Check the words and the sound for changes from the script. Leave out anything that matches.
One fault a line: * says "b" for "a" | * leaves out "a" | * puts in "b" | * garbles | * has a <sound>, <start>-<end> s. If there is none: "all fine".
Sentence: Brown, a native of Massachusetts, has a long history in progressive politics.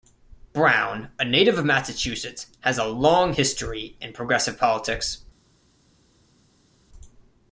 all fine